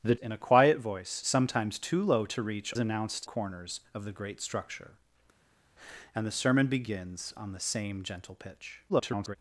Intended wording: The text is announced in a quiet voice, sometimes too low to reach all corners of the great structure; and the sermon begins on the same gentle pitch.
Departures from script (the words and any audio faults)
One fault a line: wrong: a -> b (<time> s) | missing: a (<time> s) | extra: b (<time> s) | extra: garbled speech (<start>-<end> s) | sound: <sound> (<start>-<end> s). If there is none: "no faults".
missing: text is announced (0.1 s)
wrong: all -> announced (2.8 s)
extra: garbled speech (8.9-9.4 s)